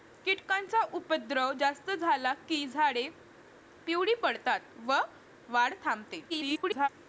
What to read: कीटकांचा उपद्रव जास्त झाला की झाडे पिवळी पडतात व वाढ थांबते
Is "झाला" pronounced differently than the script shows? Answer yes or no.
no